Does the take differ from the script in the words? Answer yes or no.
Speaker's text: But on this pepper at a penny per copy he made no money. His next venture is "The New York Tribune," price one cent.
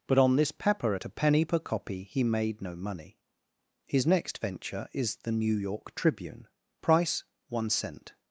no